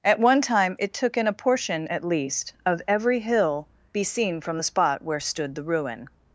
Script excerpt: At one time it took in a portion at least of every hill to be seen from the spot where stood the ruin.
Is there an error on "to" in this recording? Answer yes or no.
yes